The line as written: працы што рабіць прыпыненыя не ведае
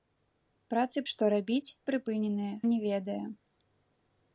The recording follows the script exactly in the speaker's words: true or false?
true